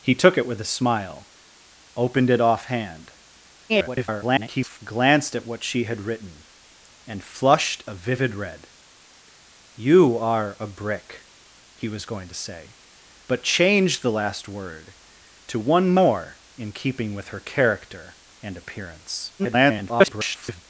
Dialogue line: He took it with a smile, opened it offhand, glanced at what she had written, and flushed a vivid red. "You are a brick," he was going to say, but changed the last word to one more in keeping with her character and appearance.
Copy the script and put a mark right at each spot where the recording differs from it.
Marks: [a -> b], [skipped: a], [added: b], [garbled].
He took it with a smile, opened it offhand, [garbled] glanced at what she had written, and flushed a vivid red. "You are a brick," he was going to say, but changed the last word to one more in keeping with her character and appearance. [garbled]